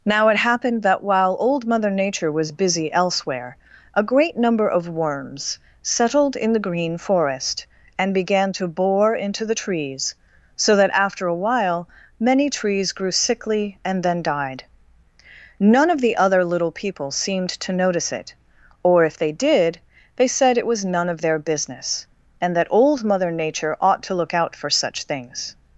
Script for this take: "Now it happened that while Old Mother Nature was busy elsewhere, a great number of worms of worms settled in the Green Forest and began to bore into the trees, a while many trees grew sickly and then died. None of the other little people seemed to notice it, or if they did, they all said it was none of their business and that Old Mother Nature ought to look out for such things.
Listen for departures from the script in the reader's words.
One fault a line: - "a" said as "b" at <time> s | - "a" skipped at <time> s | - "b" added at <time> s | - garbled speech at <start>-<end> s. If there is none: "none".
- "of worms" skipped at 5.6 s
- "so that after" added at 10.5 s
- "all" skipped at 20.3 s